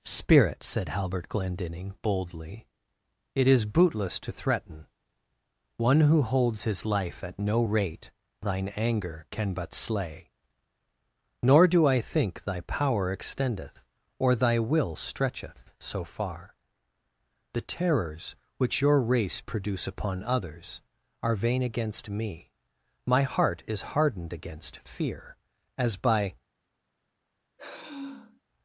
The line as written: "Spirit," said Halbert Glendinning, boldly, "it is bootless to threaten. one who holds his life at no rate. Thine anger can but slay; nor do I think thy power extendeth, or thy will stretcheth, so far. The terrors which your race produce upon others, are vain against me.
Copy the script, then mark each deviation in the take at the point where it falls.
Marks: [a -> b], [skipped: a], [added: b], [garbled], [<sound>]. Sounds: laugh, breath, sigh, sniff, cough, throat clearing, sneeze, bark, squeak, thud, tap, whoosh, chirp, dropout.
"Spirit," said Halbert Glendinning, boldly, "it is bootless to threaten. one who holds his life at no rate. Thine anger can but slay; nor do I think thy power extendeth, or thy will stretcheth, so far. The terrors which your race produce upon others, are vain against me. [added: My heart is hardened against fear as by] [sigh]